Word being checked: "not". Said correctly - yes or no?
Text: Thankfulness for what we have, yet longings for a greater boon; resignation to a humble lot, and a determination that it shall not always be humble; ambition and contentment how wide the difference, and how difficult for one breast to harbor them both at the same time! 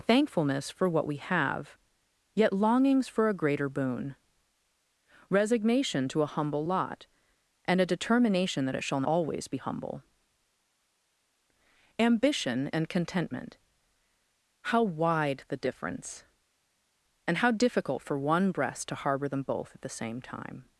no